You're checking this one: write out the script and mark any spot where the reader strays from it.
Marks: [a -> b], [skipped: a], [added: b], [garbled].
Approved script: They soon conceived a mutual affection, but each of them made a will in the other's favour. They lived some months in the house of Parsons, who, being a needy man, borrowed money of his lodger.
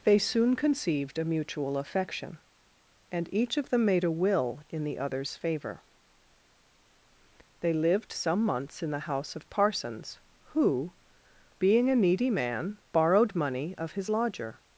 They soon conceived a mutual affection, [but -> and] each of them made a will in the other's favour. They lived some months in the house of Parsons, who, being a needy man, borrowed money of his lodger.